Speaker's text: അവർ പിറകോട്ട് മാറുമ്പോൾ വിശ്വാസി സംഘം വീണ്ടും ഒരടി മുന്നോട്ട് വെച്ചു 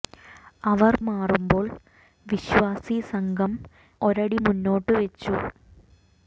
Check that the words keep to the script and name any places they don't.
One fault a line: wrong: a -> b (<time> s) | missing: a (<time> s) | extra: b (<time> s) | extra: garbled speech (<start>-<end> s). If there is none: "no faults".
missing: പിറകോട്ട് (0.9 s)
missing: വീണ്ടും (3.5 s)